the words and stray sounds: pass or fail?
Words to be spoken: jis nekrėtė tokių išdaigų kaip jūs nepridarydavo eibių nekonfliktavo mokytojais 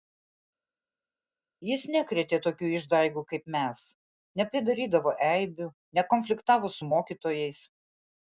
fail